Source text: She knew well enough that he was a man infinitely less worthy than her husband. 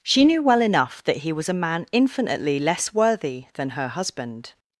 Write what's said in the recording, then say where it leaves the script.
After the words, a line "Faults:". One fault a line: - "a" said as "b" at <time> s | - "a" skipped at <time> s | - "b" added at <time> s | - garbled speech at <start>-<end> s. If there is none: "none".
She knew well enough that he was a man infinitely less worthy than her husband.
Faults:
none